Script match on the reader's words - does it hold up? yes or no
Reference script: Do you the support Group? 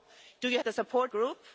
yes